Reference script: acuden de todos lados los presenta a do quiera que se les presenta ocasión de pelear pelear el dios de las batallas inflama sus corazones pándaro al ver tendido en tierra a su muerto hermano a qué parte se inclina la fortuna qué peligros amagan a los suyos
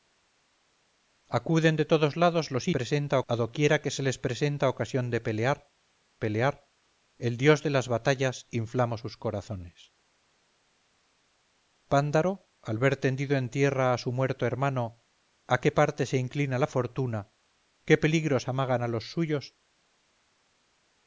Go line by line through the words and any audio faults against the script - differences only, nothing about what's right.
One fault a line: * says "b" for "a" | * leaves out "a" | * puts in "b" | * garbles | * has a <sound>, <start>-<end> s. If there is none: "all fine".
all fine